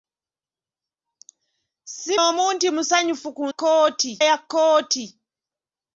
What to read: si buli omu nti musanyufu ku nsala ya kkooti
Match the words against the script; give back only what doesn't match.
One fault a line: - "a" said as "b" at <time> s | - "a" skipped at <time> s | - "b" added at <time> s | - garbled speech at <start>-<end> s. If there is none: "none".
- "buli" skipped at 2.1 s
- "nsala" said as "kkooti" at 3.5 s